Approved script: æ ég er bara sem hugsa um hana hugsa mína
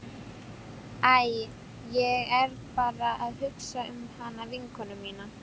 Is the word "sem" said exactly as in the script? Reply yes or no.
no